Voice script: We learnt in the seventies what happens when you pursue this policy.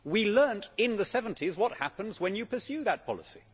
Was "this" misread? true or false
true